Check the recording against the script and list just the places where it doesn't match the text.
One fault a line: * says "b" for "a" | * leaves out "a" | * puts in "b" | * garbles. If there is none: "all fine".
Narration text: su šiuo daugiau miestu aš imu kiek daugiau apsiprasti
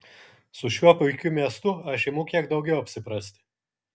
* says "puikiu" for "daugiau"